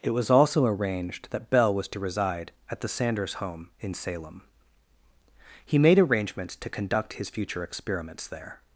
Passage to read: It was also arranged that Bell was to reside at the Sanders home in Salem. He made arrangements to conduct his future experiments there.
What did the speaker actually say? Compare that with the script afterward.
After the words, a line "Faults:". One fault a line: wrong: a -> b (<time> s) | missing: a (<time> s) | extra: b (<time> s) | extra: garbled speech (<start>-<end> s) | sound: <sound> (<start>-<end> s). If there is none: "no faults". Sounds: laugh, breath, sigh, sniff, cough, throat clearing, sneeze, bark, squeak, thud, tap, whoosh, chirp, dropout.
It was also arranged that Bell was to reside at the Sanders home in Salem. He made arrangements to conduct his future experiments there.
Faults:
no faults